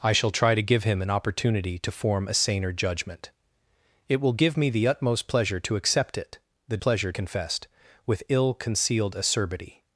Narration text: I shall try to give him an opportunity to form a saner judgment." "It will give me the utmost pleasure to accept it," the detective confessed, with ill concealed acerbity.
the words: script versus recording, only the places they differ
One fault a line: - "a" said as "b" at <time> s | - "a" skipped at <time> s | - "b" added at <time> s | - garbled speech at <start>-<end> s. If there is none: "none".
- "detective" said as "pleasure" at 6.8 s